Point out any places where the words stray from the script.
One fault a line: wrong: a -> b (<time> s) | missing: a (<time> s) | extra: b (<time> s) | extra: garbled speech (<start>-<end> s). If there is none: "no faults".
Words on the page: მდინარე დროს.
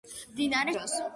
no faults